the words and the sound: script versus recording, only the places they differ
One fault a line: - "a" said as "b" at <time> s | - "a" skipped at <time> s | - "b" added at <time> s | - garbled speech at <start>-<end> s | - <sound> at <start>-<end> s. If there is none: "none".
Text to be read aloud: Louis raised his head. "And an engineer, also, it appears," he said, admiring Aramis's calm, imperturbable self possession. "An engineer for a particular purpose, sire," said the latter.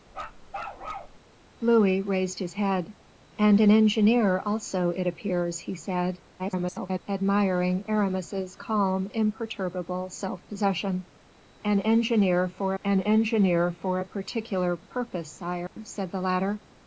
- bark at 0.1-1.2 s
- garbled speech at 6.4-7.0 s
- "an engineer for" added at 12.8 s
- dropout at 15.7-15.8 s